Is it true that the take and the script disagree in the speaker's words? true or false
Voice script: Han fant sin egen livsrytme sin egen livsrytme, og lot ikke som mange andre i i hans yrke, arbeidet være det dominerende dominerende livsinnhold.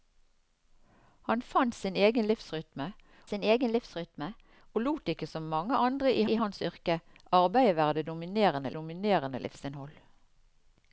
false